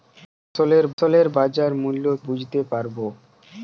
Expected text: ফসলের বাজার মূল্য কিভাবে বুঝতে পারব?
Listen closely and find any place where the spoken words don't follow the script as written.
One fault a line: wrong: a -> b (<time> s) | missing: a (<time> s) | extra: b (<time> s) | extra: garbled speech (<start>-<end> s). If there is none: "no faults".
extra: ফসলের (1.0 s)
missing: কিভাবে (2.1 s)